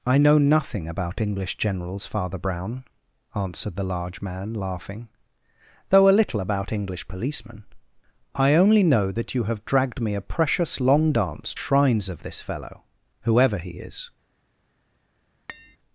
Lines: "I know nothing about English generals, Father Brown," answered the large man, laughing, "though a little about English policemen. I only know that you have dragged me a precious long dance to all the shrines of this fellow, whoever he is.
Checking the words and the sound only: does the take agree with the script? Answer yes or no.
no